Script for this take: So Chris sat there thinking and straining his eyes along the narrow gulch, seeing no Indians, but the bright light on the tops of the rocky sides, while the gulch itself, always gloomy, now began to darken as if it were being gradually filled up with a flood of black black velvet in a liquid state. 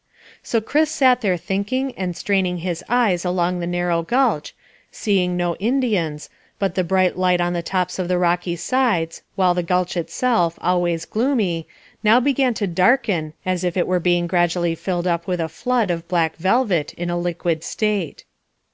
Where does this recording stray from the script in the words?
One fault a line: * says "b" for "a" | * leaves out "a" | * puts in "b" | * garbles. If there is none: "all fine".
* leaves out "black"